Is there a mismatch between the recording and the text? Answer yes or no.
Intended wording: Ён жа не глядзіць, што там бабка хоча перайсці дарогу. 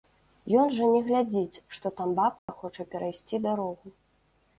no